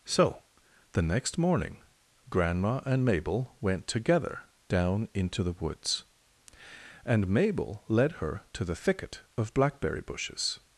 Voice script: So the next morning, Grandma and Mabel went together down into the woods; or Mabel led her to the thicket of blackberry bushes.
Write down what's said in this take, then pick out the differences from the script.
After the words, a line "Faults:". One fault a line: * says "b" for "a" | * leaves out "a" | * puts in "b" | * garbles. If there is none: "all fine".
So the next morning, Grandma and Mabel went together down into the woods; and Mabel led her to the thicket of blackberry bushes.
Faults:
* says "and" for "or"